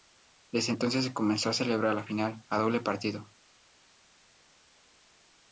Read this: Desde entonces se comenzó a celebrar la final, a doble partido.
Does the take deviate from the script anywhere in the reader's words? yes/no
no